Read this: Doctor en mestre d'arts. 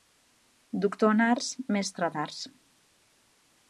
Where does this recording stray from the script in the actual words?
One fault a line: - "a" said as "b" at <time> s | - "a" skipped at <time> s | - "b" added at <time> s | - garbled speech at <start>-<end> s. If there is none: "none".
- "arts" added at 1.3 s